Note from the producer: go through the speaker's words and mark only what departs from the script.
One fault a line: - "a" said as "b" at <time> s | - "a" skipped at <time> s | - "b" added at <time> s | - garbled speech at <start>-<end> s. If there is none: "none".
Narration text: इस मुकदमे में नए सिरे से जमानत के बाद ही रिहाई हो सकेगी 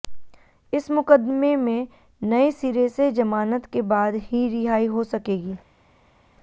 none